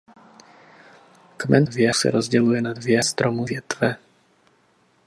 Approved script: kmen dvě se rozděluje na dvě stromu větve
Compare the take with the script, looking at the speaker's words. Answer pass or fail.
pass